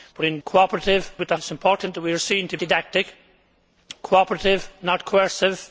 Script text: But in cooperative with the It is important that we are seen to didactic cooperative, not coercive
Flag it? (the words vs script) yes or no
no